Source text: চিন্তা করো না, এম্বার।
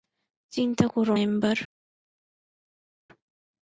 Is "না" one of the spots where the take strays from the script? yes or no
yes